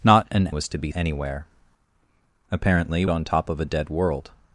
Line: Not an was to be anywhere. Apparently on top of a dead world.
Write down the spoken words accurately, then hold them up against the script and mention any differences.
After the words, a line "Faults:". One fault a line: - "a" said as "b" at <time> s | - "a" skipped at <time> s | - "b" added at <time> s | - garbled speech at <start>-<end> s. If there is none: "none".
Not an was to be anywhere. Apparently on top of a dead world.
Faults:
none